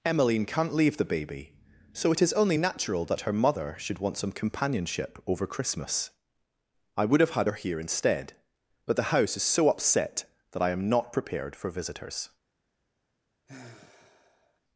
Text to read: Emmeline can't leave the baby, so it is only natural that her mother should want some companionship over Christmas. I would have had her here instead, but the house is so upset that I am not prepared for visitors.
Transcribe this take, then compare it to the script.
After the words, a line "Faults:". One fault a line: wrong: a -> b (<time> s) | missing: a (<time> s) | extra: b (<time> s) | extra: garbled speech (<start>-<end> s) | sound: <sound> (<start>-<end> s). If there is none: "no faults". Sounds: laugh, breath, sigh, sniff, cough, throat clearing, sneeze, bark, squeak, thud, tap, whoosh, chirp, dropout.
Emmeline can't leave the baby, so it is only natural that her mother should want some companionship over Christmas. I would have had her here instead, but the house is so upset that I am not prepared for visitors.
Faults:
sound: sigh (13.5-14.6 s)